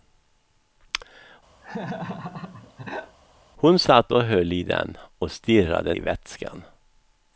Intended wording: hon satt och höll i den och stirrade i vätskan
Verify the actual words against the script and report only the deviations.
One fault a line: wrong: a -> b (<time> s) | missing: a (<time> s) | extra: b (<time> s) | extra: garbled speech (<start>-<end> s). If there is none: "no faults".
no faults